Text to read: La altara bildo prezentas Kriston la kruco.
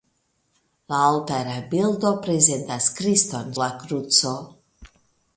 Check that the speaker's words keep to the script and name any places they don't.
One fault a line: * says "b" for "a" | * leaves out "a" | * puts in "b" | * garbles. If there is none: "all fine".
all fine